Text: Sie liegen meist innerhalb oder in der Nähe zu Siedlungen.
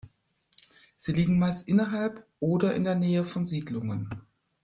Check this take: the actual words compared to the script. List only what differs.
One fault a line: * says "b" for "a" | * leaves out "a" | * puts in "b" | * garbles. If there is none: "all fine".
* says "von" for "zu"